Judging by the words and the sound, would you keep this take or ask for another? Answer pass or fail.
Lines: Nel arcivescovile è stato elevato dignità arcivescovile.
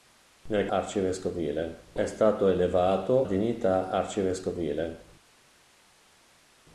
pass